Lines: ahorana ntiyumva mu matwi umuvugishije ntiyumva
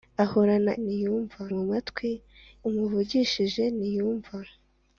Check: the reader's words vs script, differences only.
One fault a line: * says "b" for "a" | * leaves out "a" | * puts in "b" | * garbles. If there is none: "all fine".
all fine